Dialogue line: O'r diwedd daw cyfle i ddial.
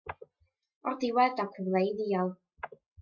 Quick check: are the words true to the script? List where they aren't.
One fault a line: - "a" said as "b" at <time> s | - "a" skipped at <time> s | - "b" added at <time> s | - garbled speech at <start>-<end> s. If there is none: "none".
none